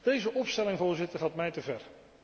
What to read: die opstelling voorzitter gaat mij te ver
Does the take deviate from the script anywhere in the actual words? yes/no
yes